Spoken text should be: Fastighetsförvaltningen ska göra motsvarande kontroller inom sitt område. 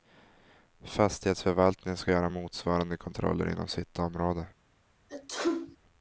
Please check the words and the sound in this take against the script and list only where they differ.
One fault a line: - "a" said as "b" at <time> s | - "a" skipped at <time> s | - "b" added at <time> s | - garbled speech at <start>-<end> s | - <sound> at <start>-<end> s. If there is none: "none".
- sneeze at 5.1-5.8 s